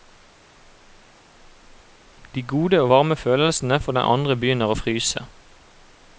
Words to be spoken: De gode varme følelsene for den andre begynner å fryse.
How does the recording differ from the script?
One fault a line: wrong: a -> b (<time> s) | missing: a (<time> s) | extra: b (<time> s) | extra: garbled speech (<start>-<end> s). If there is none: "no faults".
extra: og (2.8 s)